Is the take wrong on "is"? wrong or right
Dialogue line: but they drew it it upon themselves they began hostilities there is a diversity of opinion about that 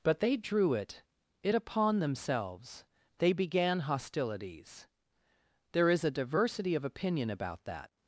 right